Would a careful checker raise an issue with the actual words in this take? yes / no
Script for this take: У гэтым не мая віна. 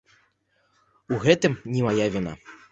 no